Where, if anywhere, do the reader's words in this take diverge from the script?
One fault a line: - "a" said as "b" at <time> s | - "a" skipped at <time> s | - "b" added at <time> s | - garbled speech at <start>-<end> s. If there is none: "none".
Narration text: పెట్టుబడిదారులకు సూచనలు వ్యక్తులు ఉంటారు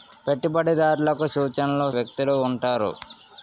none